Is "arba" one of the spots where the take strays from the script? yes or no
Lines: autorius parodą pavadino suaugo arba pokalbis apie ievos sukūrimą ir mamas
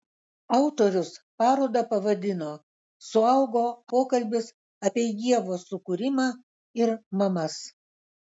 yes